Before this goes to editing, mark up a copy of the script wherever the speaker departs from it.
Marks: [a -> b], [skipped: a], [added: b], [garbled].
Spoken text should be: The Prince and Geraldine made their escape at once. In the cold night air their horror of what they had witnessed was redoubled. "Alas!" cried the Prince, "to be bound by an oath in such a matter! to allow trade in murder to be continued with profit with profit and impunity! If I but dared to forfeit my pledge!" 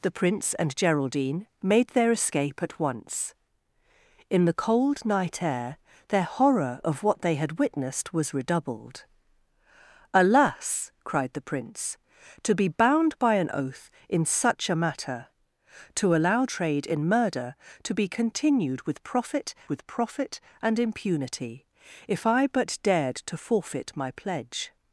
The Prince and Geraldine made their escape at once. In the cold night air their horror of what they had witnessed was redoubled. "Alas!" cried the Prince, "to be bound by an oath in such a matter! to allow trade in murder to be continued with profit with profit and impunity! If I but dared to forfeit my pledge!"